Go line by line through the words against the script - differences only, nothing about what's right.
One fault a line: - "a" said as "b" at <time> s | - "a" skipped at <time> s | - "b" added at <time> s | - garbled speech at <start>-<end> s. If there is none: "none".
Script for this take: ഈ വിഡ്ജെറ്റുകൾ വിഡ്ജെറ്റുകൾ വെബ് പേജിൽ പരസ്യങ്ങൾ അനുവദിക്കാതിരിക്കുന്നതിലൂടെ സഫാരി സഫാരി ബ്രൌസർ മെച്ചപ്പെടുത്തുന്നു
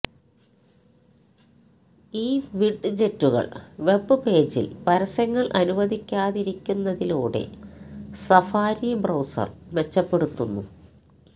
- "വിഡ്ജെറ്റുകൾ" skipped at 3.5 s
- "സഫാരി" skipped at 8.9 s